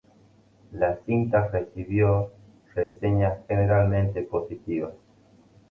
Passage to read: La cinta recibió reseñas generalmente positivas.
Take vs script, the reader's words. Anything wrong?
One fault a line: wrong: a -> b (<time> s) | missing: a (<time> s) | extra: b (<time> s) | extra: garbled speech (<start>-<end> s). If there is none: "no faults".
no faults